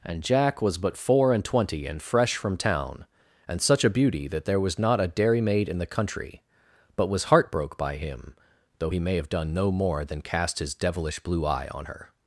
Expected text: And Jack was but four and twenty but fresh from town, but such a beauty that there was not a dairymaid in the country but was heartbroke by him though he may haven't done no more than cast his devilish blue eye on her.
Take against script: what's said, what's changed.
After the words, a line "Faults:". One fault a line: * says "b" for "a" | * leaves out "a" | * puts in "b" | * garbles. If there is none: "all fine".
And Jack was but four and twenty and fresh from town, and such a beauty that there was not a dairymaid in the country but was heartbroke by him though he may have done no more than cast his devilish blue eye on her.
Faults:
* says "and" for "but"
* says "and" for "but"
* says "have" for "haven't"